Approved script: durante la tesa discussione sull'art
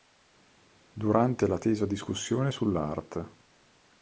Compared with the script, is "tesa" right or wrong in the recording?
right